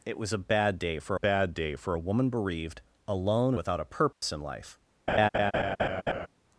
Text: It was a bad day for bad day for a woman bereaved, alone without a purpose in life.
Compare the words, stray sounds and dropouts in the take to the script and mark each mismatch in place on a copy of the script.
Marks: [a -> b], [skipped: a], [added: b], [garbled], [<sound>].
It was a bad day for bad day for a woman bereaved, alone without a purpose [dropout] in life. [laugh]